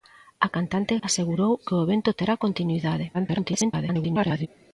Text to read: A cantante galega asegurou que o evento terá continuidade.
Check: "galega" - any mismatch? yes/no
yes